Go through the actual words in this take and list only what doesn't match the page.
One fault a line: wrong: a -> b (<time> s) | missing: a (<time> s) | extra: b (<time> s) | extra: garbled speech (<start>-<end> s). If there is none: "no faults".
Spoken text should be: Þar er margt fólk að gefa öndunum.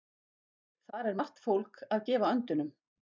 no faults